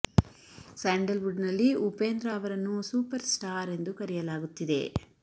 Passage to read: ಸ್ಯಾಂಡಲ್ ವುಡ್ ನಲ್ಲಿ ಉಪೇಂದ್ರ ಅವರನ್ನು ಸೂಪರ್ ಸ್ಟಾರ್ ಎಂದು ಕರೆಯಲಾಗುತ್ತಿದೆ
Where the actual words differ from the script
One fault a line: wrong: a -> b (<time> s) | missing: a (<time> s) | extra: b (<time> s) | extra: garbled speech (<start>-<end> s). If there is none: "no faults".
no faults